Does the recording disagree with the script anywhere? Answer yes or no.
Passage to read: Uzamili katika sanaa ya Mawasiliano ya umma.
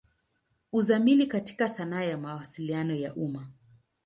no